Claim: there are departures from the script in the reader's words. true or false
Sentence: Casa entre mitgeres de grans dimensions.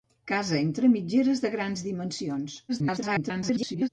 true